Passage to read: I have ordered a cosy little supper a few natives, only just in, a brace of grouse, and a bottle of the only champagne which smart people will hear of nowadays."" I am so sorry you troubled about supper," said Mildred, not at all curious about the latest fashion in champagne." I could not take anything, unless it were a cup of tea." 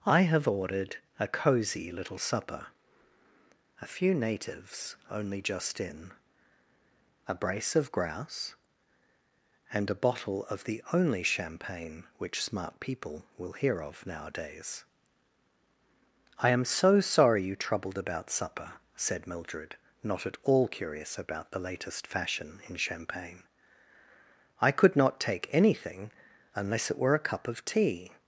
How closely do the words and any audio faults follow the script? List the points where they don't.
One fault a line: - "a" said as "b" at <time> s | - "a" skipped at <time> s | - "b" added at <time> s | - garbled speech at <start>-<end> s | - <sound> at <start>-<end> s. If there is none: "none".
none